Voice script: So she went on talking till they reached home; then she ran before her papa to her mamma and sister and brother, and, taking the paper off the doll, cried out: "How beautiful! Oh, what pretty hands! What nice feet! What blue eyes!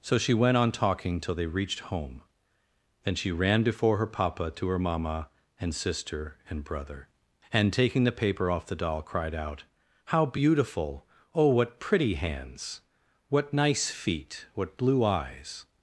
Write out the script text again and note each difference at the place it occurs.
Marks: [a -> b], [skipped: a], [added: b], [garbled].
So she went on talking till they reached home; then she ran before her papa to her mamma and sister and brother, and, taking the paper off the doll, cried out: "How beautiful! Oh, what pretty hands! What nice feet! What blue eyes!